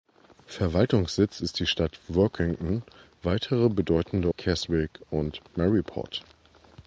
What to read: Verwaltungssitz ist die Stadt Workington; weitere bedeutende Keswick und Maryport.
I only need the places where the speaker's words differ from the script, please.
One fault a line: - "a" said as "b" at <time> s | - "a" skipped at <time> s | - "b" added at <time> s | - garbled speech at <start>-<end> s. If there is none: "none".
none